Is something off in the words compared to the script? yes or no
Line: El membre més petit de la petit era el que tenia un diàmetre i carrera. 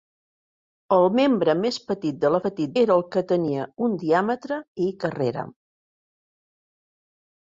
no